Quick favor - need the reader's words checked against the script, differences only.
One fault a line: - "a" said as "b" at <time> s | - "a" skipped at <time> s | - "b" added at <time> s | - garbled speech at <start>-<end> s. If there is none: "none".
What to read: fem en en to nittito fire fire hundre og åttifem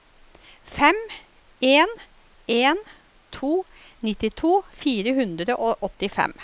- "fire" skipped at 5.1 s